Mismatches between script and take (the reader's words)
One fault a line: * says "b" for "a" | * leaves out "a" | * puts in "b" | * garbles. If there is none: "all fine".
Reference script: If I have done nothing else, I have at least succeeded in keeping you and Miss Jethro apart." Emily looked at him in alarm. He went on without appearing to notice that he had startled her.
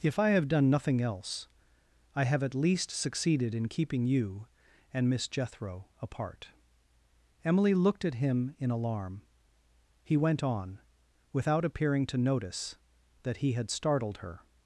all fine